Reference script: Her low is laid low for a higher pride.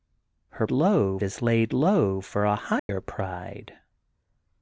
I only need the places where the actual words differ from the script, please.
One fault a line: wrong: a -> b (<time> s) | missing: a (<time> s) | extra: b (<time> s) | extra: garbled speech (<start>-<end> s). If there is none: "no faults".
no faults